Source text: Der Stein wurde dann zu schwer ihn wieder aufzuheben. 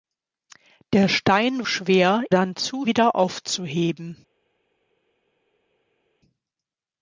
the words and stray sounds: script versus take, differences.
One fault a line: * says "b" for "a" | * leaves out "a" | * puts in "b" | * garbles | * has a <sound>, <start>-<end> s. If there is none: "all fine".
* says "schwer" for "wurde"
* leaves out "schwer ihn"